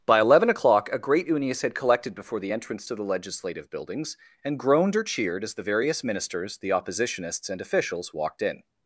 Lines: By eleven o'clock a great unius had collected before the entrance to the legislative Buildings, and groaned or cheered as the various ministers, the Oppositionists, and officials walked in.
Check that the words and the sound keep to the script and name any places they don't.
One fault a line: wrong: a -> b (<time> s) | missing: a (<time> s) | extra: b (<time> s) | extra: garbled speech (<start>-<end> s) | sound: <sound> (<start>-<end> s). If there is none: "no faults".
no faults